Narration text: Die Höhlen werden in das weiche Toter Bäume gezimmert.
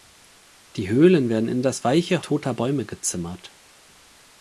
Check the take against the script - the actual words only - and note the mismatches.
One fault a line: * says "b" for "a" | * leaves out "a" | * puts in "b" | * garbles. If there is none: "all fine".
all fine